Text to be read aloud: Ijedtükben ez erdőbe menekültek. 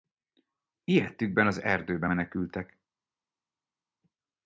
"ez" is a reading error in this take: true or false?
true